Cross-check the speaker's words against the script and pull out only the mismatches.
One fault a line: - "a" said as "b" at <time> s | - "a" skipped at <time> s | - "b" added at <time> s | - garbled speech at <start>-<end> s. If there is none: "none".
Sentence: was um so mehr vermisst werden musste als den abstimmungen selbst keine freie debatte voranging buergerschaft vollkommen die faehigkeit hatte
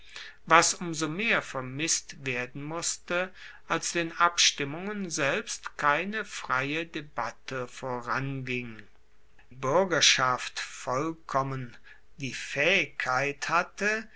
none